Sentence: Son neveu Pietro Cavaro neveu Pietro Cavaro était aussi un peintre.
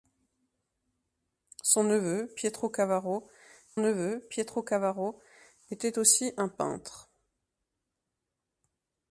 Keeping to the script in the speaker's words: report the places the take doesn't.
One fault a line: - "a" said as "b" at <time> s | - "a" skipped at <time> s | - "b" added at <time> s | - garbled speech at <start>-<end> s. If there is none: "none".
none